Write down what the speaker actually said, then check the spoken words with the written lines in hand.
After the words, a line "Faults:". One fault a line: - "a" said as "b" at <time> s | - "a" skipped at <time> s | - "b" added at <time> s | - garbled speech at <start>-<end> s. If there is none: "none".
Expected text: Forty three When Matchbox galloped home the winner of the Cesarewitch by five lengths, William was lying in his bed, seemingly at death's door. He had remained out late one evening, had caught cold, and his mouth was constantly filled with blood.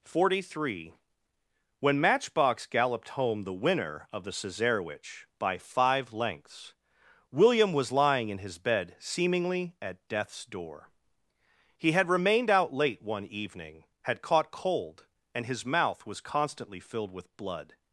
Forty three When Matchbox galloped home the winner of the Cesarewitch by five lengths, William was lying in his bed, seemingly at death's door. He had remained out late one evening, had caught cold, and his mouth was constantly filled with blood.
Faults:
none